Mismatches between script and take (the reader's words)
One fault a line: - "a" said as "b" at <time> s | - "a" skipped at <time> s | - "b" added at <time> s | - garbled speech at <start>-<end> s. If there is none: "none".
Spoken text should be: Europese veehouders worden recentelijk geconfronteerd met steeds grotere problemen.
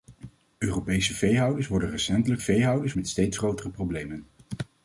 - "geconfronteerd" said as "veehouders" at 2.4 s